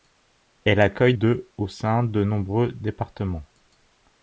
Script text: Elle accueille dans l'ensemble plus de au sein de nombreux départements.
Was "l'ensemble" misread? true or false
true